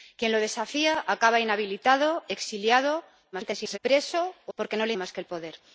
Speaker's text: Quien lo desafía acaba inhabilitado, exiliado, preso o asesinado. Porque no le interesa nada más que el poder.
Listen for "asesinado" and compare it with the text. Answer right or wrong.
wrong